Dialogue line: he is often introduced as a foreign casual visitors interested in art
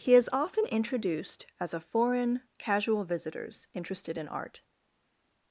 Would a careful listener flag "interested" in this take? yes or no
no